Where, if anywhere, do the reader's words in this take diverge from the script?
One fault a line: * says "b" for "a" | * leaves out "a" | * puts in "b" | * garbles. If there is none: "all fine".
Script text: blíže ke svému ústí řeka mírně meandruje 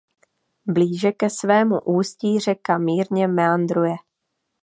all fine